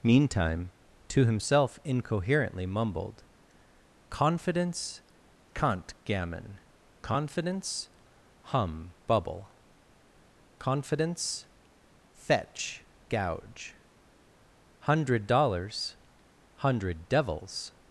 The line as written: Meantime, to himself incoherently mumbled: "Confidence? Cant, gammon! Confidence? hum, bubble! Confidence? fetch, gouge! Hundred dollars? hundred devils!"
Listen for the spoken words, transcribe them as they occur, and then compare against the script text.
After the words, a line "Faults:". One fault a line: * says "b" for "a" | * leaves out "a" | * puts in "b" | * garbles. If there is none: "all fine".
Meantime, to himself incoherently mumbled: "Confidence? Cant, gammon! Confidence? hum, bubble! Confidence? fetch, gouge! Hundred dollars? hundred devils!"
Faults:
all fine